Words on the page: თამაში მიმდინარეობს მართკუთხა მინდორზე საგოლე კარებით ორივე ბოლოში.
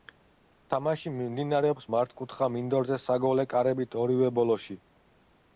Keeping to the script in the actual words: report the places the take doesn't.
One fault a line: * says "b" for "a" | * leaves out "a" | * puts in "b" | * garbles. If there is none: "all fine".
all fine